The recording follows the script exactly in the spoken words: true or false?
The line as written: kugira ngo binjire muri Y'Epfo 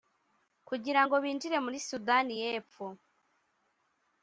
false